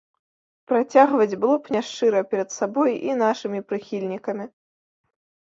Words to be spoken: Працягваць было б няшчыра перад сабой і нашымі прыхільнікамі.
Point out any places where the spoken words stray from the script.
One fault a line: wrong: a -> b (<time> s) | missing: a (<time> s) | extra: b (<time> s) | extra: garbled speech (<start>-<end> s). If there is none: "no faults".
no faults